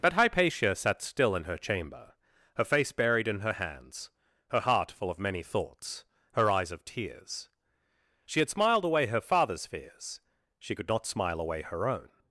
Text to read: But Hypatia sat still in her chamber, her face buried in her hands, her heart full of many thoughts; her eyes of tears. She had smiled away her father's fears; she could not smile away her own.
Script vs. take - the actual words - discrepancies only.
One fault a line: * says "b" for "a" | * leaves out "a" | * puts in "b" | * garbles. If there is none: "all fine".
all fine